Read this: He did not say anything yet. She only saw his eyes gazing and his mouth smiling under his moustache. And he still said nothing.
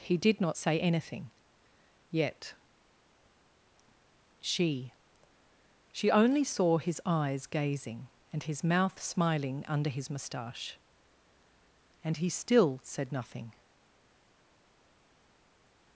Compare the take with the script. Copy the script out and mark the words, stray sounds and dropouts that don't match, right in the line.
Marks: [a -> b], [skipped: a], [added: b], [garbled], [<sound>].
He did not say anything yet. She [added: She] only saw his eyes gazing and his mouth smiling under his moustache. And he still said nothing.